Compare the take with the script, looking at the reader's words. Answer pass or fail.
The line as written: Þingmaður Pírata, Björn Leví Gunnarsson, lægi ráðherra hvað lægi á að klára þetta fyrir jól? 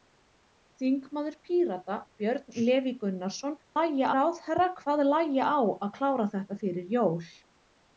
pass